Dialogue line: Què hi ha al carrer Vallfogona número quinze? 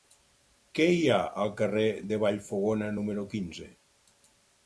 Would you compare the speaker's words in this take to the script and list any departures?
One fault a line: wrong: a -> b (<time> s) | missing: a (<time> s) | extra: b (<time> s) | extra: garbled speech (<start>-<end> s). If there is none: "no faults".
extra: de (2.1 s)